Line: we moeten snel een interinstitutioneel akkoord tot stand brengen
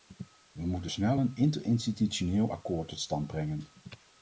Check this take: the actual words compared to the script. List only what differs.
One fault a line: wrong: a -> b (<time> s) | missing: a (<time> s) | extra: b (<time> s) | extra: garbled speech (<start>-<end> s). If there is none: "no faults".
no faults